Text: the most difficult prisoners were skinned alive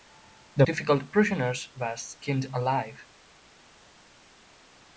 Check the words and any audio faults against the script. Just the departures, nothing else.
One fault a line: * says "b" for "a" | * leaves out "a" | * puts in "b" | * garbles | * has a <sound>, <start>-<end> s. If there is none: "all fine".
* leaves out "most"